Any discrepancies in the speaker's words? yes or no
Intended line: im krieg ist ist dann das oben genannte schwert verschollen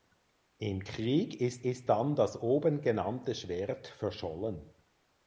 no